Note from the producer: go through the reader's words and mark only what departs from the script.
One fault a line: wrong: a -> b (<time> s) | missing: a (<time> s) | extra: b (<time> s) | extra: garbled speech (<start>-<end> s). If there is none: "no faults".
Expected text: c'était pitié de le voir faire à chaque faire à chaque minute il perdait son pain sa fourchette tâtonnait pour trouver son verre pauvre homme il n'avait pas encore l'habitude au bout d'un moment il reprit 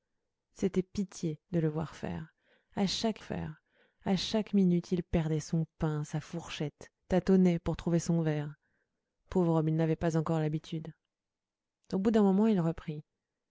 no faults